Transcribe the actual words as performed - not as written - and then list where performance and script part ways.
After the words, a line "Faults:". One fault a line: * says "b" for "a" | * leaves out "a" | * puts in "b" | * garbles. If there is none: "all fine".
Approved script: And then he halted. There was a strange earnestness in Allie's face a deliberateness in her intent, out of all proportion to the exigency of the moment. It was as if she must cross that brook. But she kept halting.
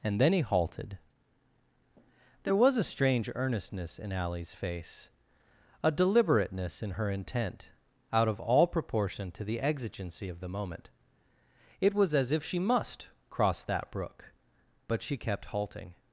And then he halted. There was a strange earnestness in Allie's face a deliberateness in her intent, out of all proportion to the exigency of the moment. It was as if she must cross that brook. But she kept halting.
Faults:
all fine